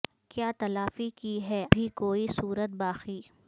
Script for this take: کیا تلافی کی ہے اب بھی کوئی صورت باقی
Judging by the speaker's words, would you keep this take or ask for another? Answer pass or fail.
fail